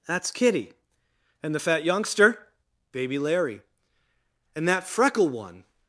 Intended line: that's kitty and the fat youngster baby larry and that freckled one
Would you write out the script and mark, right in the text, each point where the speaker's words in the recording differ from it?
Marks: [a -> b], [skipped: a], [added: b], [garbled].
that's kitty and the fat youngster baby larry and that [freckled -> freckle] one